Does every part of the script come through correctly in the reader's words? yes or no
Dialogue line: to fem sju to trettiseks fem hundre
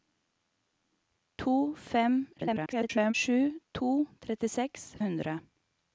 no